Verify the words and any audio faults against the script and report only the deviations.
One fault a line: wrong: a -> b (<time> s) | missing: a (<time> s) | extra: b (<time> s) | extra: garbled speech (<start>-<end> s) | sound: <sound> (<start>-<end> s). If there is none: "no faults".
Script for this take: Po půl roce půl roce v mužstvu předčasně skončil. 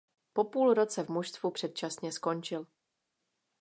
missing: půl roce (1.0 s)